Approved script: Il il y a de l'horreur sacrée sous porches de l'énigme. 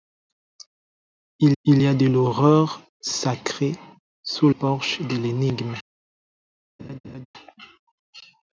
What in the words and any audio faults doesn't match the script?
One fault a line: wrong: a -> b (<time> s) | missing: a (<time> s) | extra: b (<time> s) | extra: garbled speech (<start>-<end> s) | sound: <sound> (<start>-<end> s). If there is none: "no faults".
sound: laugh (6.8-7.3 s)